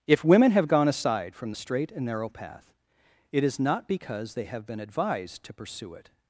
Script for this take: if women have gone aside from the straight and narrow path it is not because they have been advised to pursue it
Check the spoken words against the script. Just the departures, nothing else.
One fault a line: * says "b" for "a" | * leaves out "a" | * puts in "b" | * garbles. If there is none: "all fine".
all fine